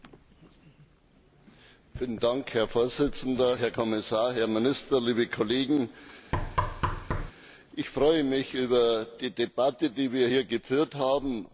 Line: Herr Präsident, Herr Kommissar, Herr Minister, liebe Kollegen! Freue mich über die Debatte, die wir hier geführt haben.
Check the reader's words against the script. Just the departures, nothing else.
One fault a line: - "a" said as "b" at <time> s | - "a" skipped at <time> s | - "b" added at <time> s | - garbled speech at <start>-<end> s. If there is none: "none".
- "Ich" added at 7.8 s